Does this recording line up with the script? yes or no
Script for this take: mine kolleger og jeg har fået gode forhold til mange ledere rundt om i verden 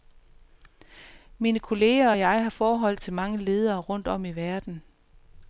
no